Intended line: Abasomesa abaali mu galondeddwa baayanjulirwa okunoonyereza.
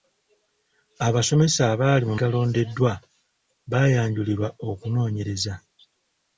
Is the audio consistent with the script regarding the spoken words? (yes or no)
yes